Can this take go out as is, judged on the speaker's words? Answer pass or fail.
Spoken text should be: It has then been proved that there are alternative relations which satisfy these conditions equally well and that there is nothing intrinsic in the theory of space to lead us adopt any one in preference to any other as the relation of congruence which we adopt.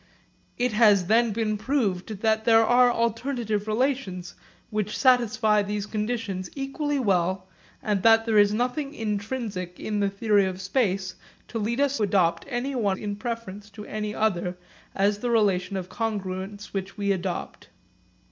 pass